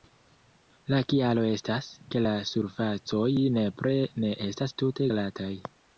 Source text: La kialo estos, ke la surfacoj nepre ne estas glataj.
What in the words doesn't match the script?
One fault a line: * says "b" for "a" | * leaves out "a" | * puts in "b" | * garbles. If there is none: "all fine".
* says "estas" for "estos"
* puts in "tute"